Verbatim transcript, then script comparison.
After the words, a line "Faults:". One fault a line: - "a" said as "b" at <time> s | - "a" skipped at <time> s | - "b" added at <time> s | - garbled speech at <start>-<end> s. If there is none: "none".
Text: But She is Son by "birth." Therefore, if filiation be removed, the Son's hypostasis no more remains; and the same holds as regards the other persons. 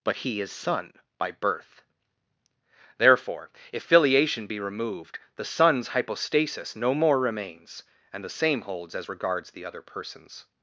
But He is Son by "birth." Therefore, if filiation be removed, the Son's hypostasis no more remains; and the same holds as regards the other persons.
Faults:
- "She" said as "He" at 0.2 s